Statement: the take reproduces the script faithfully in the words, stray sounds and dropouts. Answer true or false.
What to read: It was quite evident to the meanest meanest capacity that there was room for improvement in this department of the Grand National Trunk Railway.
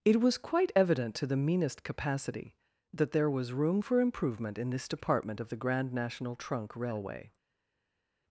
false